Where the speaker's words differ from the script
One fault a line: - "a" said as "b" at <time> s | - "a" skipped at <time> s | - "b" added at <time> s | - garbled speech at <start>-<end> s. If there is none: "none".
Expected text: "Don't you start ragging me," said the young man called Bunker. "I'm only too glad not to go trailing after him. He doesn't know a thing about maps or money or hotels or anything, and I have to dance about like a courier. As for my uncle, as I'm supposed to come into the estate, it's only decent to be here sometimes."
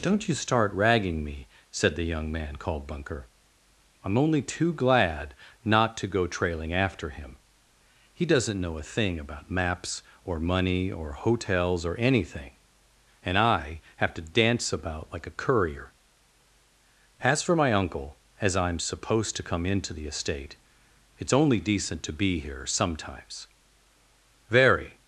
- "Very" added at 24.5 s